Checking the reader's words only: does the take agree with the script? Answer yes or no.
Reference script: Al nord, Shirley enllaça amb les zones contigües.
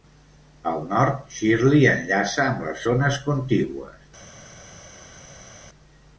yes